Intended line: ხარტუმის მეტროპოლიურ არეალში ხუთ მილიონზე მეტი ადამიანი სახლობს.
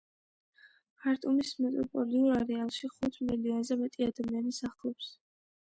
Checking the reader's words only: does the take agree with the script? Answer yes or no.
yes